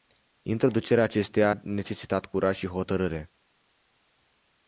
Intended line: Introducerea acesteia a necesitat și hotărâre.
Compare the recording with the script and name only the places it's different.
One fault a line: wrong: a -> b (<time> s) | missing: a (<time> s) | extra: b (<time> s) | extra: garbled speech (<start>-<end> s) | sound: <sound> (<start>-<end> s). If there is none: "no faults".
extra: curaj (2.2 s)